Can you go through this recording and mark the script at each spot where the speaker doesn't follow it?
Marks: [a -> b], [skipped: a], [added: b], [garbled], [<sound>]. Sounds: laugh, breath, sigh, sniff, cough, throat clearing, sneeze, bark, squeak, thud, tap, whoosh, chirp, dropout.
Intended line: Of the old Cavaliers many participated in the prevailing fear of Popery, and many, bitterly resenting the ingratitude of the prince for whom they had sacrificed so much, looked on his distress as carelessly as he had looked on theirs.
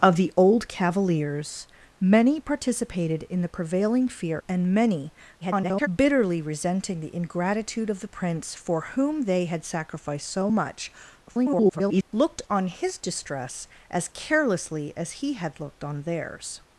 Of the old Cavaliers many participated in the prevailing fear [skipped: of Popery,] and many, [garbled] bitterly resenting the ingratitude of the prince for whom they had sacrificed so much, [garbled] looked on his distress as carelessly as he had looked on theirs.